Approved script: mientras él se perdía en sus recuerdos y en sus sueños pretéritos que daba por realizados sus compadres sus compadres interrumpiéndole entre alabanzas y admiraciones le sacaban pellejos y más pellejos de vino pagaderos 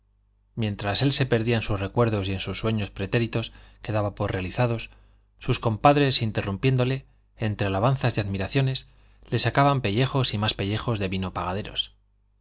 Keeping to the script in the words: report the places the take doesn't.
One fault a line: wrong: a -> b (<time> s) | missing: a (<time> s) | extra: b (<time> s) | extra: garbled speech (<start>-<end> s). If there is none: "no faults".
missing: sus compadres (6.2 s)